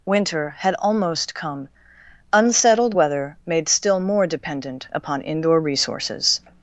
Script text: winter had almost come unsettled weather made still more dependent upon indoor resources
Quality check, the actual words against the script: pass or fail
pass